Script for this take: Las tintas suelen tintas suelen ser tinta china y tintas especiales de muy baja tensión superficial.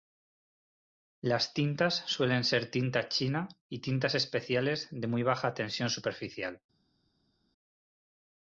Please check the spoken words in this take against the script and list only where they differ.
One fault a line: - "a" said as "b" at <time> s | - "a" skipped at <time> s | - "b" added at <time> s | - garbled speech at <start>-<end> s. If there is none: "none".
- "tintas suelen" skipped at 2.4 s